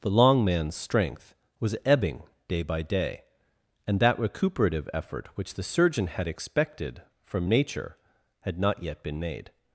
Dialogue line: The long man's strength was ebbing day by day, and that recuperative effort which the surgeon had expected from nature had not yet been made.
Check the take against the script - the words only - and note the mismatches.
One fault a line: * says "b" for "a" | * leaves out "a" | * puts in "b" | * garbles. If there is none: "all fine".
all fine